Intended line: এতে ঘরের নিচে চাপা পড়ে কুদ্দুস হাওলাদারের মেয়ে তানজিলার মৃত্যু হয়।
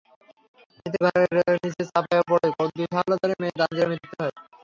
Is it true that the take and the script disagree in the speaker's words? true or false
false